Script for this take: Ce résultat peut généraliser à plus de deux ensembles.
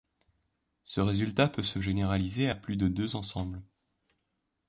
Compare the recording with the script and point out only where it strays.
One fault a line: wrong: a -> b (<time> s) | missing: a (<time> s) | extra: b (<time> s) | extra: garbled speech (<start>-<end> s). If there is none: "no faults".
extra: se (1.6 s)